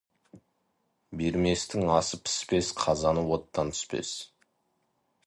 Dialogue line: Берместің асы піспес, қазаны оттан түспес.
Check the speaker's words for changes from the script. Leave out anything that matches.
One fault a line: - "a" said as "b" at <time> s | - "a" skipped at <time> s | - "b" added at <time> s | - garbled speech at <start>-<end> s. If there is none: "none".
none